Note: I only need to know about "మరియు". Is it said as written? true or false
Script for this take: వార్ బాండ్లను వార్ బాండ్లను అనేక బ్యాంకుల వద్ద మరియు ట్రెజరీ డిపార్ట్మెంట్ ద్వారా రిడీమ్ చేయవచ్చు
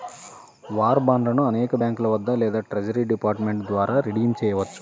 false